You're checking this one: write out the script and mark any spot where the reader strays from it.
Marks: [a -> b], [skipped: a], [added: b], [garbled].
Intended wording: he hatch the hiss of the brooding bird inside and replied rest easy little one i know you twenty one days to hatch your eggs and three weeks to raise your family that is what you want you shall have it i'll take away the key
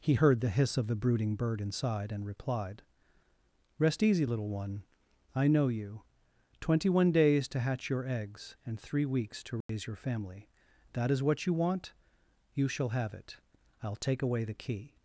he [hatch -> heard] the hiss of the brooding bird inside and replied rest easy little one i know you twenty one days to hatch your eggs and three weeks to raise your family that is what you want you shall have it i'll take away the key